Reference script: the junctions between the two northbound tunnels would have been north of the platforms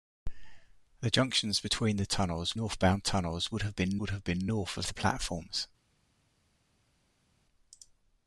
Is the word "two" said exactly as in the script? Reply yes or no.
no